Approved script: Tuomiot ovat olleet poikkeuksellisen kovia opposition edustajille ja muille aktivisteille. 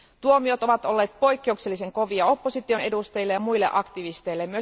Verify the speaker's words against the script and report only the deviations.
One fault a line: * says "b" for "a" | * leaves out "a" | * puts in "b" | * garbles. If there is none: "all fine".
all fine